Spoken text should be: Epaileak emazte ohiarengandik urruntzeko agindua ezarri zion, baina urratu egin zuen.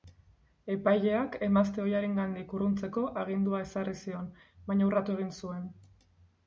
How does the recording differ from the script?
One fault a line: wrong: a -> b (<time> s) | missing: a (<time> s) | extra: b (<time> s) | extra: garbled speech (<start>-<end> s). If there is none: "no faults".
no faults